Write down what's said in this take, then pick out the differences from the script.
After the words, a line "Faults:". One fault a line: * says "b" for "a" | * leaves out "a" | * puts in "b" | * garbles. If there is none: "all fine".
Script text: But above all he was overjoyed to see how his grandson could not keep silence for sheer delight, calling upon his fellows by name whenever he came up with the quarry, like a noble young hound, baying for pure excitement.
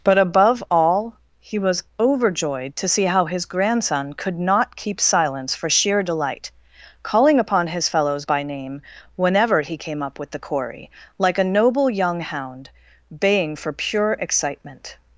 But above all he was overjoyed to see how his grandson could not keep silence for sheer delight, calling upon his fellows by name whenever he came up with the quarry, like a noble young hound, baying for pure excitement.
Faults:
all fine